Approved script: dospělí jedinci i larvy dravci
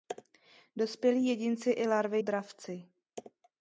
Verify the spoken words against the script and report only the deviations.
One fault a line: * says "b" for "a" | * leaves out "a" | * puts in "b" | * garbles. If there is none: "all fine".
all fine